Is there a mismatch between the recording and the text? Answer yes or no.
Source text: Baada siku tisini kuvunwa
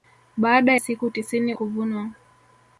no